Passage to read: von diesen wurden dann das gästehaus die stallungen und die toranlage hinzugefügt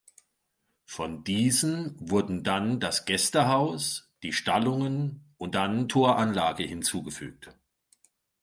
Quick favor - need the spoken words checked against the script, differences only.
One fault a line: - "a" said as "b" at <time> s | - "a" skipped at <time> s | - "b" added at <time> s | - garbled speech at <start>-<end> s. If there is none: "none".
- "die" said as "dann" at 5.5 s